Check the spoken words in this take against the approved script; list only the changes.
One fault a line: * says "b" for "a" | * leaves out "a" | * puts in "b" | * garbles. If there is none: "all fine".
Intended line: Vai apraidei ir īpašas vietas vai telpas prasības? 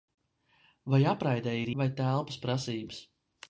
* leaves out "īpašas vietas"